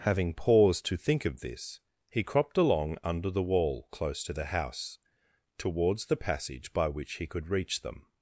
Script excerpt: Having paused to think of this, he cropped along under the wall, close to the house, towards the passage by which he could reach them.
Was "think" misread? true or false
false